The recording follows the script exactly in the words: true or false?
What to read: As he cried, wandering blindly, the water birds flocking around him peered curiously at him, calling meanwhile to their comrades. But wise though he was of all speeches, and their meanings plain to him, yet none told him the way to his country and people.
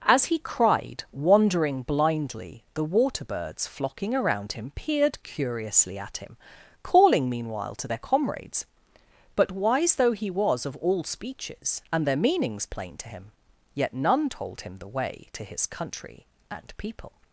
true